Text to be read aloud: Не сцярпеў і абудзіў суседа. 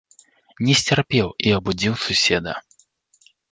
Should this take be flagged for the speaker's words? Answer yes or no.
no